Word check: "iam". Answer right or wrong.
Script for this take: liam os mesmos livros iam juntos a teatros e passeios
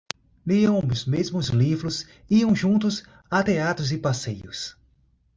right